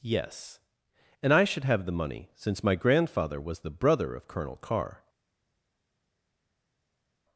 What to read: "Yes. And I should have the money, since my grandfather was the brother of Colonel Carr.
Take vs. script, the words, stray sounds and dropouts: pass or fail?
pass